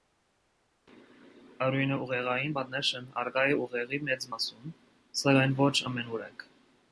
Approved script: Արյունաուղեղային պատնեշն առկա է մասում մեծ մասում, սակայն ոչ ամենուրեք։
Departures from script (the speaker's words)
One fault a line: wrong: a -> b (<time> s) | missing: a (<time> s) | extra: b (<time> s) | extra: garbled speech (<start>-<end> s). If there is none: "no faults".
wrong: մասում -> ուղեղի (3.6 s)